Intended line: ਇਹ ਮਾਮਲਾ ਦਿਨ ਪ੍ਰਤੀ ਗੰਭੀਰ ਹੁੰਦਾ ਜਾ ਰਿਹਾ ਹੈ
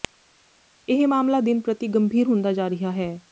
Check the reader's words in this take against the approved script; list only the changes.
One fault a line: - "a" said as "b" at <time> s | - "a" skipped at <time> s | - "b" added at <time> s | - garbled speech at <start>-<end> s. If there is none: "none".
none